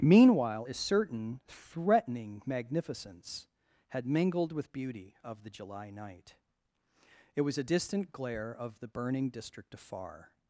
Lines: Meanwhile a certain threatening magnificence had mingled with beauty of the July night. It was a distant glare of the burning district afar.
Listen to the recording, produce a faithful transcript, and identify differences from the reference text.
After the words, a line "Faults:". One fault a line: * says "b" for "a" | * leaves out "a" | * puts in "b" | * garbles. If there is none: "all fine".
Meanwhile a certain threatening magnificence had mingled with beauty of the July night. It was a distant glare of the burning district afar.
Faults:
all fine